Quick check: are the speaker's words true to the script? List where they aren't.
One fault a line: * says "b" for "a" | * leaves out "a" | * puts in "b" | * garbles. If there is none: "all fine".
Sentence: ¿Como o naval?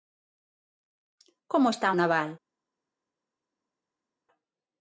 * puts in "está"